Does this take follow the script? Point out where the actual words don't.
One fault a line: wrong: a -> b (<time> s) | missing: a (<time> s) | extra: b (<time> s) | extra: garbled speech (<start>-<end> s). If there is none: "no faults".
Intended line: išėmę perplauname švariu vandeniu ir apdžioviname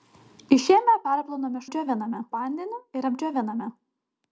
wrong: švariu -> apdžioviname (1.7 s)